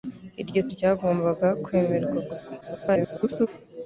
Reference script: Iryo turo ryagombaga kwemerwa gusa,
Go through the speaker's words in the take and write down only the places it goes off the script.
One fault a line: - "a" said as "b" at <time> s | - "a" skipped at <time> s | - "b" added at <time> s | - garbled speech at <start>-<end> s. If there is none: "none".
- "turo" skipped at 0.6 s
- garbled speech at 2.6-3.5 s